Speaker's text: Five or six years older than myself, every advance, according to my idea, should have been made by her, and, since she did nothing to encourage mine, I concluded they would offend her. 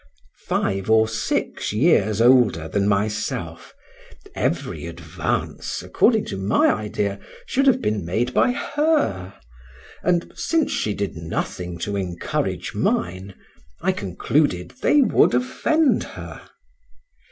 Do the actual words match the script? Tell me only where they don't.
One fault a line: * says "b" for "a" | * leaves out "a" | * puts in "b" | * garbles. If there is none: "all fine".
all fine